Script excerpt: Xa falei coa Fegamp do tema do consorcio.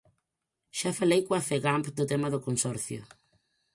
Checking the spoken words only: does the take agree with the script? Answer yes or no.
yes